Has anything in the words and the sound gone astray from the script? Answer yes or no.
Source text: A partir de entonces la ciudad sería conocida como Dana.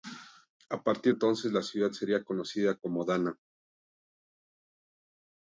yes